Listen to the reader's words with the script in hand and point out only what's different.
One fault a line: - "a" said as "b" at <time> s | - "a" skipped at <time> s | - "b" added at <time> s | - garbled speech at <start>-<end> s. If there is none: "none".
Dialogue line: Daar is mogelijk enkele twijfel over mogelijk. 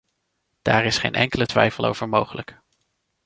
- "mogelijk" said as "geen" at 1.0 s